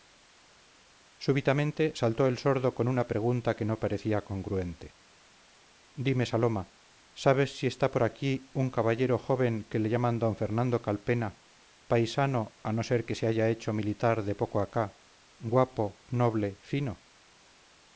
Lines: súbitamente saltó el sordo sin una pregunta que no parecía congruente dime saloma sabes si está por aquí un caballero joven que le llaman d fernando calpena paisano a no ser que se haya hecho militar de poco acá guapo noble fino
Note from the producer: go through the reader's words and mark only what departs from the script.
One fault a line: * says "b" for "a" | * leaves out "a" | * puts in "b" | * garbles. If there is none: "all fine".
* says "con" for "sin"